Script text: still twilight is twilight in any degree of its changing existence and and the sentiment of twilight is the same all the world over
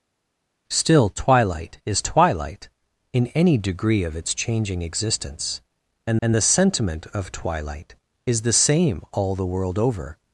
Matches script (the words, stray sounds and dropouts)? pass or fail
pass